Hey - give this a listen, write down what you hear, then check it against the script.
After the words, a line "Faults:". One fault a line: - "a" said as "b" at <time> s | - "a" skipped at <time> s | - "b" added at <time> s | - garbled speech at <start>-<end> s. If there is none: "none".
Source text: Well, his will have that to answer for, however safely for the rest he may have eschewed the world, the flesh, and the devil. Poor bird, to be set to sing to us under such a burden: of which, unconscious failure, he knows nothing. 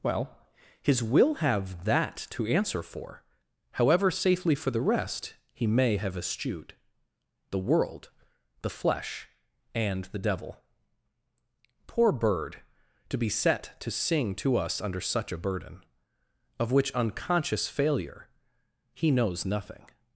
Well, his will have that to answer for, however safely for the rest he may have eschewed the world, the flesh, and the devil. Poor bird, to be set to sing to us under such a burden: of which, unconscious failure, he knows nothing.
Faults:
none